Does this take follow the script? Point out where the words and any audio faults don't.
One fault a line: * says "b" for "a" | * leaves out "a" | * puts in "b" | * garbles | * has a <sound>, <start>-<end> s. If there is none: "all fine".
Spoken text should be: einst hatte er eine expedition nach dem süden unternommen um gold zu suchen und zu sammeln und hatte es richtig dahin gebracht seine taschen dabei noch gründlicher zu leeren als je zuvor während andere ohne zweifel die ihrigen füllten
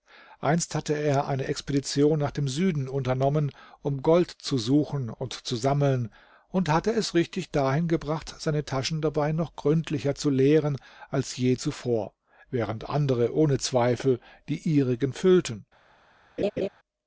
* has a laugh, 16.4-16.7 s